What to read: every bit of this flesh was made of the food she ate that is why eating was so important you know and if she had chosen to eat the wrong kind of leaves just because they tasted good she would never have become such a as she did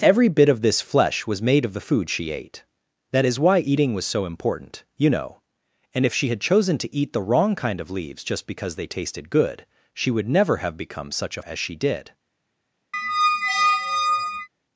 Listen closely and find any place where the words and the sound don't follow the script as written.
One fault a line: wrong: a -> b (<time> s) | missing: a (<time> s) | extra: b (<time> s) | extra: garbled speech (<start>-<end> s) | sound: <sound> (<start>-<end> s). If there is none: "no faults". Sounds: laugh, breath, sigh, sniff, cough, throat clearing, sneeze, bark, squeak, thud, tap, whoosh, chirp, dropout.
sound: squeak (12.9-14.5 s)